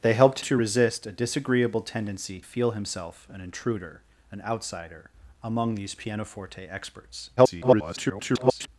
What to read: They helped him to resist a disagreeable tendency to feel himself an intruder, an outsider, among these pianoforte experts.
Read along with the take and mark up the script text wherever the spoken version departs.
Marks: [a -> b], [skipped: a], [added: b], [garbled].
They helped [skipped: him] to resist a disagreeable tendency [skipped: to] feel himself an intruder, an outsider, among these pianoforte experts. [garbled]